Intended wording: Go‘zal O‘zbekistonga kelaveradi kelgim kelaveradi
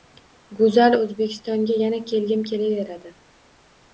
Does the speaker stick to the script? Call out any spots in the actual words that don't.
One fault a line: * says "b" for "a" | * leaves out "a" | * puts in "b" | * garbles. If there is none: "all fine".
* says "yana" for "kelaveradi"